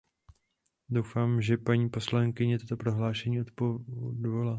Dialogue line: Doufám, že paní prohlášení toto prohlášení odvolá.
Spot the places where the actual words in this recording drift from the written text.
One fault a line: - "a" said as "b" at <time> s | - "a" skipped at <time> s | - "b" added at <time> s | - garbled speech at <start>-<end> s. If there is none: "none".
- "prohlášení" said as "poslankyně" at 1.9 s